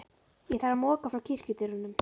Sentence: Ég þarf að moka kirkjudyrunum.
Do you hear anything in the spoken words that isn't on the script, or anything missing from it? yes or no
yes